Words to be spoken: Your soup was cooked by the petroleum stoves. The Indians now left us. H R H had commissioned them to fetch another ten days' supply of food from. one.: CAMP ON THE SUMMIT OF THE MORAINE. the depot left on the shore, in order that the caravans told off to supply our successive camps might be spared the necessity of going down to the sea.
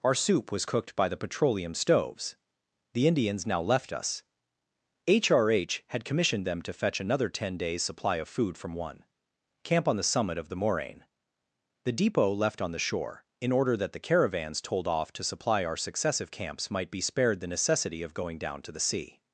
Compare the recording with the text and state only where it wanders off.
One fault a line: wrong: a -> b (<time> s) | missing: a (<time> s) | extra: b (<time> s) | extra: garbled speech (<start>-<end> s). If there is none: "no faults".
wrong: Your -> Our (0.0 s)